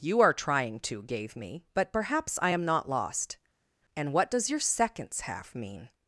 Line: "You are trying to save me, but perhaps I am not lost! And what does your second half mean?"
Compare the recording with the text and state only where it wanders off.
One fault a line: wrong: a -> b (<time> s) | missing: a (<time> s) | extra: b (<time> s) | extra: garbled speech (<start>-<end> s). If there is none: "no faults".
wrong: save -> gave (1.0 s)
wrong: second -> seconds (4.6 s)